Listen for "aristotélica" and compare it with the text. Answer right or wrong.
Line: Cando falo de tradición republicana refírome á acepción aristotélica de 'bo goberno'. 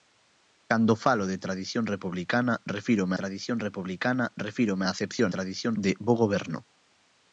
wrong